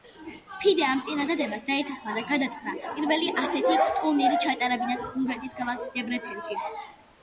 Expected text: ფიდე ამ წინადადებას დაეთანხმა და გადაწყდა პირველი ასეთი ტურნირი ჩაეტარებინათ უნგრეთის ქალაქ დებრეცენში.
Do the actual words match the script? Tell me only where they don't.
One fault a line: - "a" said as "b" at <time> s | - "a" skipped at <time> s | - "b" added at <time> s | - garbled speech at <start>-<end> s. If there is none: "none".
none